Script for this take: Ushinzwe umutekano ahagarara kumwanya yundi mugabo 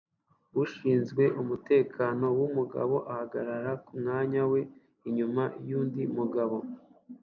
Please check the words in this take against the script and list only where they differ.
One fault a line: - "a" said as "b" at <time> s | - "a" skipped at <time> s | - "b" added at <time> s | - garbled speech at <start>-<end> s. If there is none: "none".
- "wumugabo" added at 2.4 s
- "we inyuma" added at 4.5 s